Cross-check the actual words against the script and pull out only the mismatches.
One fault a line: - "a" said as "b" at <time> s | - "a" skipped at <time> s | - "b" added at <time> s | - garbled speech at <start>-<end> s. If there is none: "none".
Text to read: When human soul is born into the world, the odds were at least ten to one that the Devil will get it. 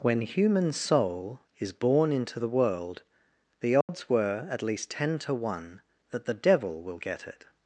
none